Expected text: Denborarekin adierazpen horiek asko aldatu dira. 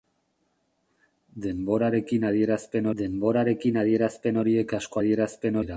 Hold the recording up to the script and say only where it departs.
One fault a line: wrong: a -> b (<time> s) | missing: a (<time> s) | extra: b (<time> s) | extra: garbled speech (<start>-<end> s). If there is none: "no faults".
extra: denborarekin adierazpen (3.0 s)
wrong: aldatu -> adierazpen (5.0 s)